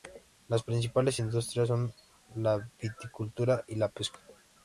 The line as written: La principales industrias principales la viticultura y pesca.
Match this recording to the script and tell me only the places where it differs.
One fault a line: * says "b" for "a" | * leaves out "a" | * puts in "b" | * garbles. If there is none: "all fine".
* says "Las" for "La"
* says "son" for "principales"
* puts in "la"